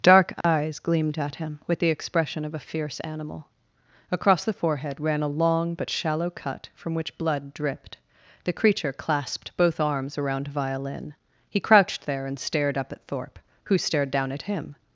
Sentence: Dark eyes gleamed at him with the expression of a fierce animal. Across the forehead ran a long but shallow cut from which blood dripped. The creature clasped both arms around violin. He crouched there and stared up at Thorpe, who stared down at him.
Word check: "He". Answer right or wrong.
right